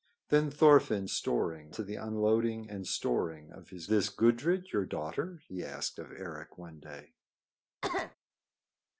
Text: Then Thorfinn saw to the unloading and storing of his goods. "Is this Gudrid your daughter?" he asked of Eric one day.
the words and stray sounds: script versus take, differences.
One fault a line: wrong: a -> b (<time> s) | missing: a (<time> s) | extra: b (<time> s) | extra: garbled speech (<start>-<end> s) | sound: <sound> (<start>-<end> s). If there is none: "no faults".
wrong: saw -> storing (1.1 s)
missing: goods Is (3.9 s)
sound: cough (7.8-8.2 s)